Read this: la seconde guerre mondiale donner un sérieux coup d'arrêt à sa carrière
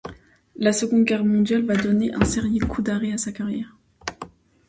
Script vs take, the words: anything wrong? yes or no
yes